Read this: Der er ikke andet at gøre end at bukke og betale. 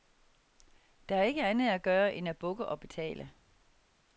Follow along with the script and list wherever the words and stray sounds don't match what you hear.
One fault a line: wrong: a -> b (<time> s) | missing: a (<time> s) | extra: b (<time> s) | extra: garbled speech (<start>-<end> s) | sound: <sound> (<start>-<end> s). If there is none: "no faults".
no faults